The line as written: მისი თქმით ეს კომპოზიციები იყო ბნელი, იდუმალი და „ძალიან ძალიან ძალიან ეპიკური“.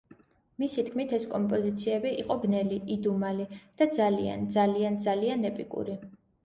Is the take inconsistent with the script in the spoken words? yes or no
no